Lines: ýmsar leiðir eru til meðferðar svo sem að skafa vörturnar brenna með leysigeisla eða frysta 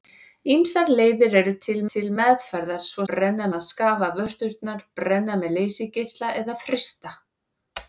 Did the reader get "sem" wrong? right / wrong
wrong